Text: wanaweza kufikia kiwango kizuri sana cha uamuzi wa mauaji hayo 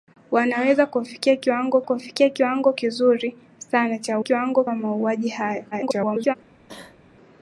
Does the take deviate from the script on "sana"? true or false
false